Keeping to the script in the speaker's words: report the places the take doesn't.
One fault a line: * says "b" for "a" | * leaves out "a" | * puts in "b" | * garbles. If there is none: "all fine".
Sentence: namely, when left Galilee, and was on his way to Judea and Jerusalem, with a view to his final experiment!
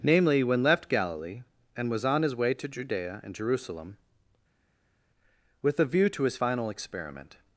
all fine